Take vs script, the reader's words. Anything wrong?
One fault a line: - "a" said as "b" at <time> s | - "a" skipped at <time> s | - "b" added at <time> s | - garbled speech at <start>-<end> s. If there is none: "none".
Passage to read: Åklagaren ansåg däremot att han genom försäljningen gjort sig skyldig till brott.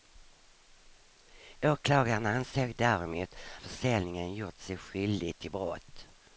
- "att han genom" skipped at 3.4 s